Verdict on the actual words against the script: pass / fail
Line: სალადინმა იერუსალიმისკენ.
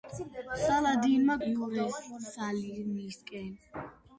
pass